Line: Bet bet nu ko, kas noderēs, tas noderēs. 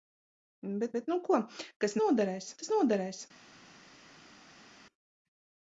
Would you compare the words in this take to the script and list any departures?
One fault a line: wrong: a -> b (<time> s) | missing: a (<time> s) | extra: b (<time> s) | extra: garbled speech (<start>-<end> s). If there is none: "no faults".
no faults